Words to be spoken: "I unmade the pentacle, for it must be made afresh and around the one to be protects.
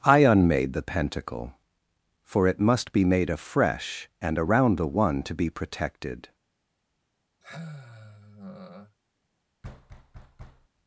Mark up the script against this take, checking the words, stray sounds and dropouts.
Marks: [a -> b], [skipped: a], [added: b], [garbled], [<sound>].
"I unmade the pentacle, for it must be made afresh and around the one to be [protects. -> protected] [sigh] [thud]